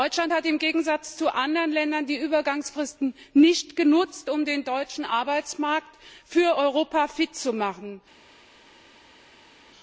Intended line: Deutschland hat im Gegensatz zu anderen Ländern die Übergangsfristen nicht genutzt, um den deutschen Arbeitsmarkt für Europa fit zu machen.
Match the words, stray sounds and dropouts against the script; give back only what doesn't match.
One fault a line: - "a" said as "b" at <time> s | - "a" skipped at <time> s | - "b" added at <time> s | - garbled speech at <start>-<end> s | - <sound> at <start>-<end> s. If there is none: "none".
none